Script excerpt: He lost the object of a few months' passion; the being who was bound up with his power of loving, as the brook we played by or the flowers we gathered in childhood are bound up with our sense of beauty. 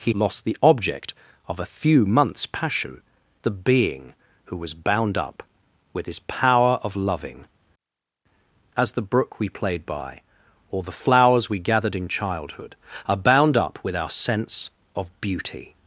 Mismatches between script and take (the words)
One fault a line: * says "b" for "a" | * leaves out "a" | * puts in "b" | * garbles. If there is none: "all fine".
all fine